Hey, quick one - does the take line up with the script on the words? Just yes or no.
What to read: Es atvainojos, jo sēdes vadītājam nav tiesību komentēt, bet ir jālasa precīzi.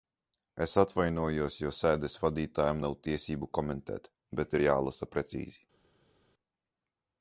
yes